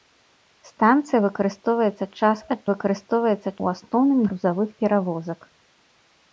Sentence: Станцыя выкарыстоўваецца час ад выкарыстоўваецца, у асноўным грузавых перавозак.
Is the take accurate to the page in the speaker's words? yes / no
yes